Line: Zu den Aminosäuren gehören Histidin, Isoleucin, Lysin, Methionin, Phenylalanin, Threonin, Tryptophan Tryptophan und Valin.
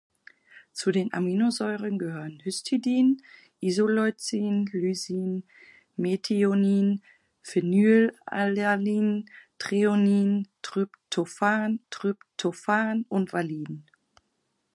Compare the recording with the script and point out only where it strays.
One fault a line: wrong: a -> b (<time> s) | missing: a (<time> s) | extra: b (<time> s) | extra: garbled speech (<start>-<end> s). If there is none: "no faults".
no faults